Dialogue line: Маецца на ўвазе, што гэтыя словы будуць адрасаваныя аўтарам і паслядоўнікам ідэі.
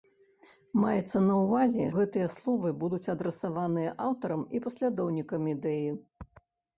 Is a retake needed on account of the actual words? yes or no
yes